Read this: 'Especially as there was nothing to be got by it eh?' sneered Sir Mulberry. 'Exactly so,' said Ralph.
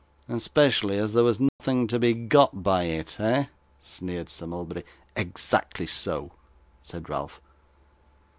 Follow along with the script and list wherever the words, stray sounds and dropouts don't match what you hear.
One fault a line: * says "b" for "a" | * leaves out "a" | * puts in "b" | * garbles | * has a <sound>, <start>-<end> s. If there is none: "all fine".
* has a dropout, 1.5-1.6 s